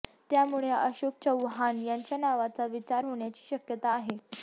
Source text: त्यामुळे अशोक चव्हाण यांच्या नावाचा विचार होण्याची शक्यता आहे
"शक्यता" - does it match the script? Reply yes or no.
yes